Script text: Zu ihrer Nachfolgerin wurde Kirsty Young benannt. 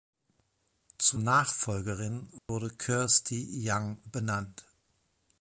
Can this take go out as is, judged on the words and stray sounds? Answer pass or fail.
fail